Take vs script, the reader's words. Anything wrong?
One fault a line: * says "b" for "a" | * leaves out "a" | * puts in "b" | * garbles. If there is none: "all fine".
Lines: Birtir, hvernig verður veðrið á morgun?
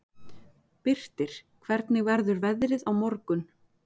all fine